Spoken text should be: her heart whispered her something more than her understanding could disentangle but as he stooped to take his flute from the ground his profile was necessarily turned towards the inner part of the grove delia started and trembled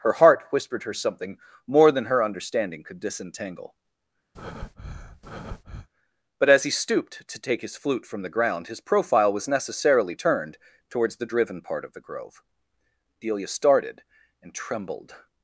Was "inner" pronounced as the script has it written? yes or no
no